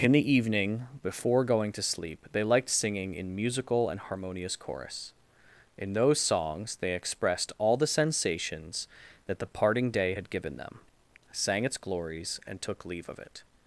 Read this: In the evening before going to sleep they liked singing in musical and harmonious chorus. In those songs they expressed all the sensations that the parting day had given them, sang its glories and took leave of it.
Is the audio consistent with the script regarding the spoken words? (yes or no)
yes